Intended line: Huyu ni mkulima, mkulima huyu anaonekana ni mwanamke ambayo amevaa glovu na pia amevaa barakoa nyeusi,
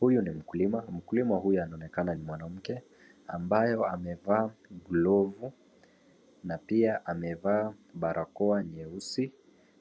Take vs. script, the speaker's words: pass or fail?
pass